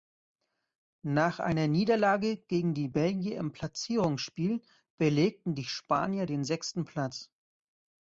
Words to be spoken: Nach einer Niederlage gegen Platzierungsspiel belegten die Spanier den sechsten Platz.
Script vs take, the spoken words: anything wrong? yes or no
yes